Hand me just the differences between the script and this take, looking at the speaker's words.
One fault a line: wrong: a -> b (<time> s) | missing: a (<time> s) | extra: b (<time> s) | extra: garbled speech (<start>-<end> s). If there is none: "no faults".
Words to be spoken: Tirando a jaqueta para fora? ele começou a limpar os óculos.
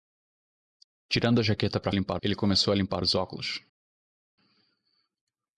wrong: fora -> limpar (1.9 s)